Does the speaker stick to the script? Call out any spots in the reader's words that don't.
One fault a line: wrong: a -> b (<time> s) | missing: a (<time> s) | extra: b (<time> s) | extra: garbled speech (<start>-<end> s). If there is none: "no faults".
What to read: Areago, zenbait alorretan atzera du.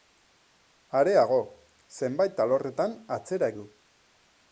no faults